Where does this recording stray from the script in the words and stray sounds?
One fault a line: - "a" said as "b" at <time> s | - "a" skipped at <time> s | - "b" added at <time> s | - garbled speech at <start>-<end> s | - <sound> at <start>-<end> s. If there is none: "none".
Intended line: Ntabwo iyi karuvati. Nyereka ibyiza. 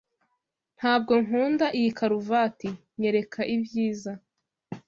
- "nkunda" added at 1.2 s